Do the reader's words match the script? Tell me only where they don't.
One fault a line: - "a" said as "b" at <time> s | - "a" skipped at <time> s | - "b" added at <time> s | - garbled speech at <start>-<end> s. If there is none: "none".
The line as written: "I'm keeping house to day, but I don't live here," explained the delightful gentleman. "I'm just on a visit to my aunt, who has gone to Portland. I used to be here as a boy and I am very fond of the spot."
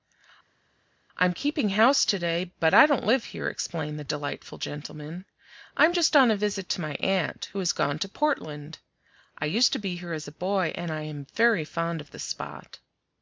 none